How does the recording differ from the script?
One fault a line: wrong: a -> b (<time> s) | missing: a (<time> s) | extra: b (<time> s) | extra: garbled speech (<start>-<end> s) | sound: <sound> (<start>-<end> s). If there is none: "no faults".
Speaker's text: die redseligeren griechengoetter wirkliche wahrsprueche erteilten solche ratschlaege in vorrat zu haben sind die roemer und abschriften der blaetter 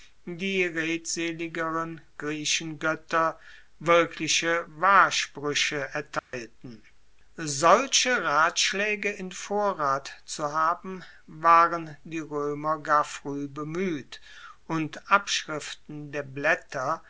sound: dropout (6.2-6.3 s)
wrong: sind -> waren (11.3 s)
extra: gar frueh bemueht (12.8 s)